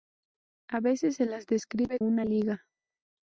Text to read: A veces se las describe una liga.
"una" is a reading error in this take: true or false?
false